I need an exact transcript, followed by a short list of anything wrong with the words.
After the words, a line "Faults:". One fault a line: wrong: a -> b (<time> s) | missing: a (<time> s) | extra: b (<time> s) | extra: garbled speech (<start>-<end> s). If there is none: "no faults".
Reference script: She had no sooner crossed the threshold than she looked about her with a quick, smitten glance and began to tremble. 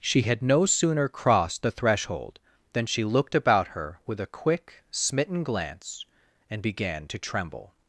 She had no sooner crossed the threshold than she looked about her with a quick, smitten glance and began to tremble.
Faults:
no faults